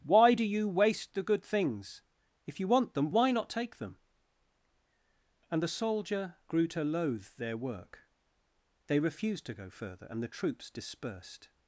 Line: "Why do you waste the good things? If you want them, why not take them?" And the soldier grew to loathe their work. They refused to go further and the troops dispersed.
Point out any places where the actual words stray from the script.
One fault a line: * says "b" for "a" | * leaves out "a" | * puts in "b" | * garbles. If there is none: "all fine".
all fine